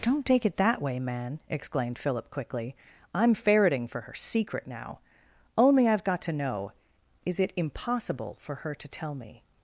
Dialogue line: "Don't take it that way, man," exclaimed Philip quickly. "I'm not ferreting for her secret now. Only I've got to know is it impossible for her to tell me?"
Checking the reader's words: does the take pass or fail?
fail